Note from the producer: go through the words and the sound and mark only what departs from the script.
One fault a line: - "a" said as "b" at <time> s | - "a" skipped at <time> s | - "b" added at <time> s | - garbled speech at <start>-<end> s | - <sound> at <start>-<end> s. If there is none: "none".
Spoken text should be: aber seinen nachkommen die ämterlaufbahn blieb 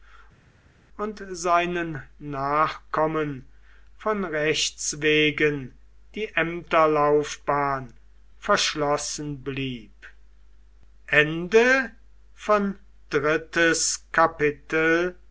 - "aber" said as "und" at 1.0 s
- "von rechts wegen" added at 4.0 s
- "verschlossen" added at 8.4 s